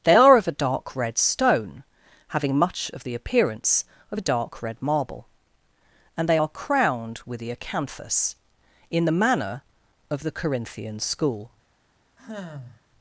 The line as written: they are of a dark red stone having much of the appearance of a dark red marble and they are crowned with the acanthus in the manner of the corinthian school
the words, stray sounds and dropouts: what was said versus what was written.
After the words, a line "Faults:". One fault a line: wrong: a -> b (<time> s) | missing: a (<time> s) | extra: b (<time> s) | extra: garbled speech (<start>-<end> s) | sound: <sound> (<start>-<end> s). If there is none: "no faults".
they are of a dark red stone having much of the appearance of a dark red marble and they are crowned with the acanthus in the manner of the corinthian school
Faults:
sound: sigh (12.2-12.8 s)